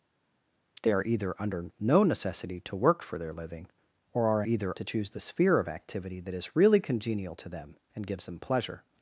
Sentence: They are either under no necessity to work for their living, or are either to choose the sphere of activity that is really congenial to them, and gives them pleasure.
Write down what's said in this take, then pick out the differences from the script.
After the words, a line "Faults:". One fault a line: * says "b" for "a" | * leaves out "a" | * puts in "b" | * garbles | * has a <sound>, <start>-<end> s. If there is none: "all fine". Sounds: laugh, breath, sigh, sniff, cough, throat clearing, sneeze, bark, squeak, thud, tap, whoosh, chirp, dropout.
They are either under no necessity to work for their living, or are either to choose the sphere of activity that is really congenial to them, and gives them pleasure.
Faults:
all fine